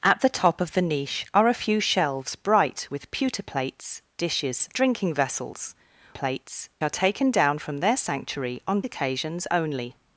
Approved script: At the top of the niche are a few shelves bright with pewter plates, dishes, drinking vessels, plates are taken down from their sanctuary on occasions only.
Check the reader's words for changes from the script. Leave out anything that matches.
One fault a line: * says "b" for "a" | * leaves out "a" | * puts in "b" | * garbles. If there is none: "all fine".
all fine